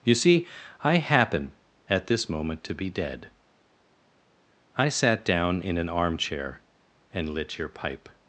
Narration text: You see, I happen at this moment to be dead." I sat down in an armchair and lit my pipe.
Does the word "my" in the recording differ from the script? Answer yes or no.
yes